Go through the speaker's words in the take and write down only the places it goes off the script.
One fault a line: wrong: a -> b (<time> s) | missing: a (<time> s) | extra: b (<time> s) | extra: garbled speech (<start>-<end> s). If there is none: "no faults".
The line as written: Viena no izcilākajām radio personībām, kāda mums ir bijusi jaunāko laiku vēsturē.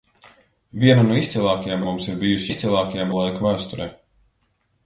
missing: radio personībām kāda (1.8 s)
wrong: jaunāko -> izcilākajām (2.5 s)